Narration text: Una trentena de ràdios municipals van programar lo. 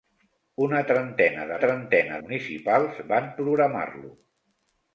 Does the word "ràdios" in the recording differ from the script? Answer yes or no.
yes